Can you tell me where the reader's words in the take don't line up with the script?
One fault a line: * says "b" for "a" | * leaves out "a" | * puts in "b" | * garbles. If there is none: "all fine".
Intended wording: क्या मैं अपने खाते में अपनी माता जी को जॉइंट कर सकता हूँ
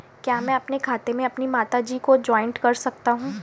all fine